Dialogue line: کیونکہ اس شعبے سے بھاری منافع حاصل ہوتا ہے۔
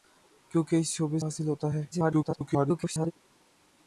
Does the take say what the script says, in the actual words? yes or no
no